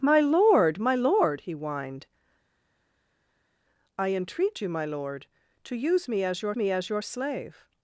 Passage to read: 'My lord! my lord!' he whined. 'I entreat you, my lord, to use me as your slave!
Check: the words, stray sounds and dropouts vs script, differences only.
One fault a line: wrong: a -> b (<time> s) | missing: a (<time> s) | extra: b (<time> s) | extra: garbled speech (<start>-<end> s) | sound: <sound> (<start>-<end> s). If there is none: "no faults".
extra: me as your (6.6 s)